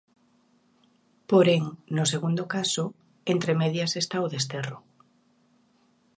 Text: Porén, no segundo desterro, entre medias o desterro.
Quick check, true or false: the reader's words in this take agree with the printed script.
false